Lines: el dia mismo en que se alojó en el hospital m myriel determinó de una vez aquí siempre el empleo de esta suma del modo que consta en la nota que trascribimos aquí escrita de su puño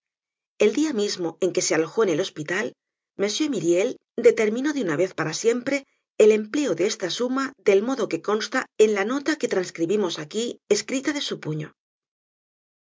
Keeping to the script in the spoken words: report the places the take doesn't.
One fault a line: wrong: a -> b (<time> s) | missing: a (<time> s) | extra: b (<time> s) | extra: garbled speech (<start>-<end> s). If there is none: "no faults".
wrong: aquí -> para (5.1 s)